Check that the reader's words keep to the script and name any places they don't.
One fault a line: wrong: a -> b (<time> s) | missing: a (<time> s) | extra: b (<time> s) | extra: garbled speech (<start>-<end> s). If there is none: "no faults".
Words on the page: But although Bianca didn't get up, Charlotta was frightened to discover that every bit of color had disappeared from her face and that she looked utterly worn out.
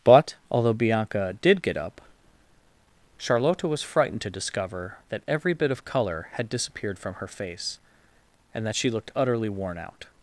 wrong: didn't -> did (1.4 s)